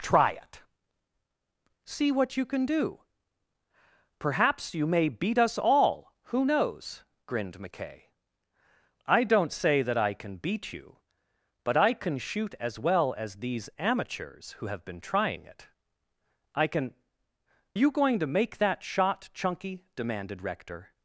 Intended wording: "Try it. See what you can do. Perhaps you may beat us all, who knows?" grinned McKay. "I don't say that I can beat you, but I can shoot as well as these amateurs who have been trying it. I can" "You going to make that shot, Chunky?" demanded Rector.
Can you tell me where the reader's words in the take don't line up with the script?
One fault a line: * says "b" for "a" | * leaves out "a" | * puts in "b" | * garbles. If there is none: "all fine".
all fine